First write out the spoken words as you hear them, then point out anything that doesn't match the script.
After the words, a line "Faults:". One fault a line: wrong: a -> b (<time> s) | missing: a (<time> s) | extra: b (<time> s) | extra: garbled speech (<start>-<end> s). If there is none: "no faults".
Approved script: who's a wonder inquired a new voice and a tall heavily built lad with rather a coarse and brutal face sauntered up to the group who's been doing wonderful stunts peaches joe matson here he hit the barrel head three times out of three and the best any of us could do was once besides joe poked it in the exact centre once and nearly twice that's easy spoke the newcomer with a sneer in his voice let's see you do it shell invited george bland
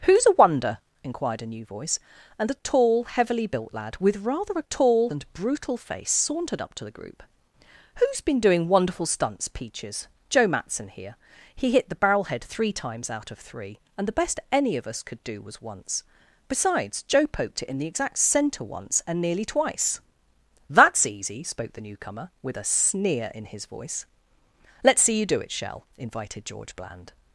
who's a wonder inquired a new voice and a tall heavily built lad with rather a tall and brutal face sauntered up to the group who's been doing wonderful stunts peaches joe matson here he hit the barrel head three times out of three and the best any of us could do was once besides joe poked it in the exact centre once and nearly twice that's easy spoke the newcomer with a sneer in his voice let's see you do it shell invited george bland
Faults:
wrong: coarse -> tall (4.6 s)